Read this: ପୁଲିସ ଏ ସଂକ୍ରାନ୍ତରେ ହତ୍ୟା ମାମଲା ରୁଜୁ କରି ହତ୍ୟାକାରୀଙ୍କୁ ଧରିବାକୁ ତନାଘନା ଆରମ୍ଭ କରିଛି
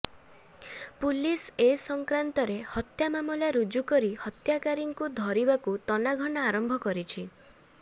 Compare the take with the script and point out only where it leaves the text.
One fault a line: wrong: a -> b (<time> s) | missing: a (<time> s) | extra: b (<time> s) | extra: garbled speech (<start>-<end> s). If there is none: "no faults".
no faults